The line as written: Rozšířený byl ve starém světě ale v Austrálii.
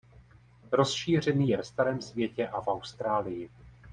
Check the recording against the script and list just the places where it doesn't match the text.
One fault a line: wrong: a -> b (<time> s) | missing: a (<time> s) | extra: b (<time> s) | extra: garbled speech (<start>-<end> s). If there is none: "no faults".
wrong: byl -> je (1.5 s)
wrong: ale -> a (2.5 s)